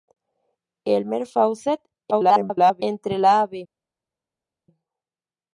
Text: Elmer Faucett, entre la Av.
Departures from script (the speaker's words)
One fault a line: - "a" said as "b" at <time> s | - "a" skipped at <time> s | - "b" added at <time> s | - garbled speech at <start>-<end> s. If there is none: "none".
- garbled speech at 2.1-2.8 s